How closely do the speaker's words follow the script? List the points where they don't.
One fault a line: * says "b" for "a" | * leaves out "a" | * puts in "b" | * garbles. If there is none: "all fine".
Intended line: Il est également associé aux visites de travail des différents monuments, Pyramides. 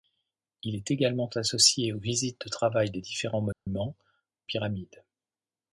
all fine